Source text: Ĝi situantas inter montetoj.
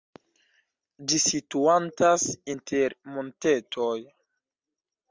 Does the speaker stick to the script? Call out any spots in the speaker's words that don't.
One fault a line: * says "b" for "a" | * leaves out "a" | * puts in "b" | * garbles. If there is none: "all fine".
all fine